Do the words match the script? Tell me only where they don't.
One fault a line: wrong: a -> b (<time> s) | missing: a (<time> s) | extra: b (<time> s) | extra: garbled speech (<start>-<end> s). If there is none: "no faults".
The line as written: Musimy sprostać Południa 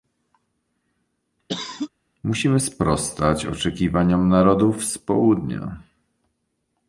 extra: oczekiwaniom narodów z (3.5 s)